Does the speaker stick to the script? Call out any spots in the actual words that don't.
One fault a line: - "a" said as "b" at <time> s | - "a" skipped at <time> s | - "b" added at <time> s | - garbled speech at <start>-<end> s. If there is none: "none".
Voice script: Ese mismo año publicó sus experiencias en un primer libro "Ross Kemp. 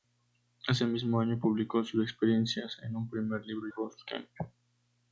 none